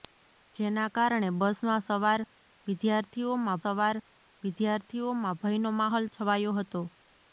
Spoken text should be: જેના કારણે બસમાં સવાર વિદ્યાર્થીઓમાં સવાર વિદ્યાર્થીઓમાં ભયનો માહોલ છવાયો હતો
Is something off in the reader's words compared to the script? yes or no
no